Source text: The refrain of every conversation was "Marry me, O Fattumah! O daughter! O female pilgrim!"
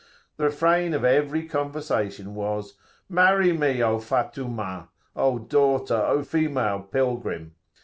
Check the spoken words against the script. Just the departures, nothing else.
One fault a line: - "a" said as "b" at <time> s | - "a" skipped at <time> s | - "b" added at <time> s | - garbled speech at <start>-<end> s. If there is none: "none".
none